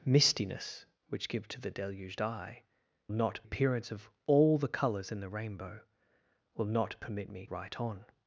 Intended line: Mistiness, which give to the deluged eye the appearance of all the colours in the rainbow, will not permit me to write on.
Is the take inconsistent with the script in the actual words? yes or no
yes